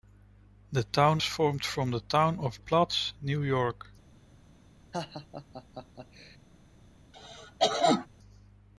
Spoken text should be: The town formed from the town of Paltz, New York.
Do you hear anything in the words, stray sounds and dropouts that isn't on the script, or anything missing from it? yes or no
yes